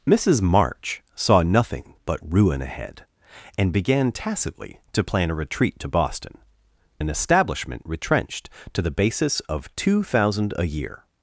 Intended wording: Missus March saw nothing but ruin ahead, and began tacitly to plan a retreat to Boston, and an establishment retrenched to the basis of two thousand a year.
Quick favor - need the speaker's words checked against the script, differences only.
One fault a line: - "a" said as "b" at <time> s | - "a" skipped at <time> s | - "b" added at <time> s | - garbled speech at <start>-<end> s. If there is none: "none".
- "and" skipped at 6.4 s